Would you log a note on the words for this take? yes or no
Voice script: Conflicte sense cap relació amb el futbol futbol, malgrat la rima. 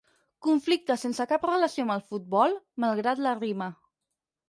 yes